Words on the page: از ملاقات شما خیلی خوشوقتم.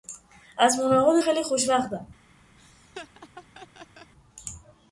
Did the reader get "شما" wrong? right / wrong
wrong